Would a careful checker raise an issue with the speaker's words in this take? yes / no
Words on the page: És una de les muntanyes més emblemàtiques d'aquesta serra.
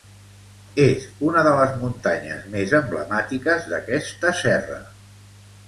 no